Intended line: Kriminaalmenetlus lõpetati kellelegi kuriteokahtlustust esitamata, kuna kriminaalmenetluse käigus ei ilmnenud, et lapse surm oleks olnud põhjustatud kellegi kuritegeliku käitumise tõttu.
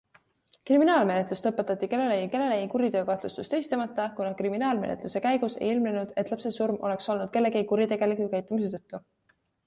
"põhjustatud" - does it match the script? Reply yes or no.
no